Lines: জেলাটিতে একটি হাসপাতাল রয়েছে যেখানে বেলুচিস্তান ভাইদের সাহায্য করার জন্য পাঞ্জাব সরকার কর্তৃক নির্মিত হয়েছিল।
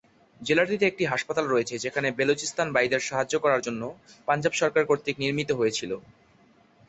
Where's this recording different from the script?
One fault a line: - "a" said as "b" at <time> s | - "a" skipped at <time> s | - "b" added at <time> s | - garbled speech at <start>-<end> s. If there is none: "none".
none